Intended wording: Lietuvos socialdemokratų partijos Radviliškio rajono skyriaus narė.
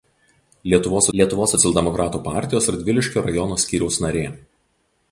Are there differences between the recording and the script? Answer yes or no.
yes